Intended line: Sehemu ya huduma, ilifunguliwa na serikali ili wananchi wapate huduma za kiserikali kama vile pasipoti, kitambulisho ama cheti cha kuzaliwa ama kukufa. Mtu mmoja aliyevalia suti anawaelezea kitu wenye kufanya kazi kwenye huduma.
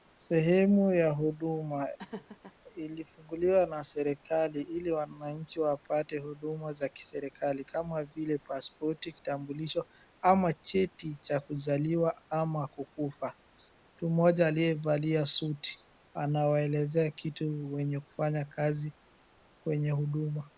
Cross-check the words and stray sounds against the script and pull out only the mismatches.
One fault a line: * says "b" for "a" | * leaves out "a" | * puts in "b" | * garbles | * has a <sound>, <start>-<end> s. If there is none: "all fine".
* has a laugh, 2.0-2.6 s